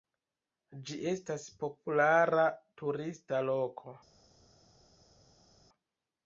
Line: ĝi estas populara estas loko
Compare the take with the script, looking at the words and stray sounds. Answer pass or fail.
fail